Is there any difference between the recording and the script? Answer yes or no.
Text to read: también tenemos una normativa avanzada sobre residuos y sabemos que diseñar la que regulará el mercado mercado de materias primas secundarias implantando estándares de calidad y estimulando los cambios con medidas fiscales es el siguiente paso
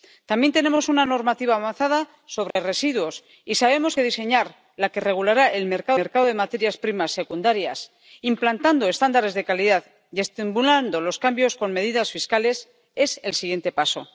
no